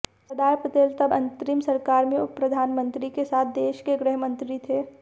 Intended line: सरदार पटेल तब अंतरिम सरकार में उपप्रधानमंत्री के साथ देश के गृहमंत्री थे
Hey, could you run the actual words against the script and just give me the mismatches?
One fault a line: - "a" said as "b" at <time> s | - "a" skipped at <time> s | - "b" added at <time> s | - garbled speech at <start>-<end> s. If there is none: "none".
none